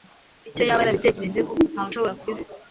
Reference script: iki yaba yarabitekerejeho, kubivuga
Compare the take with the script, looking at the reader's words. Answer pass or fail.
fail